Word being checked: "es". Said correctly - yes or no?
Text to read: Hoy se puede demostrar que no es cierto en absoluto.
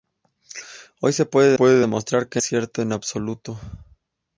no